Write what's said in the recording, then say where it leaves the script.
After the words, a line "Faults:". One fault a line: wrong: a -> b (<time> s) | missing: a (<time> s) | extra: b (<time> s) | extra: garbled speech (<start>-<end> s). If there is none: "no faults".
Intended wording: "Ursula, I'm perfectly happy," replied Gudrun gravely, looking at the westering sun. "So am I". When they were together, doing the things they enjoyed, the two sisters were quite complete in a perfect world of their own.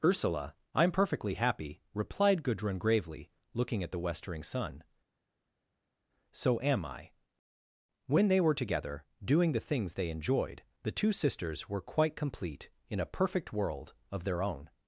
"Ursula, I'm perfectly happy," replied Gudrun gravely, looking at the westering sun. "So am I". When they were together, doing the things they enjoyed, the two sisters were quite complete in a perfect world of their own.
Faults:
no faults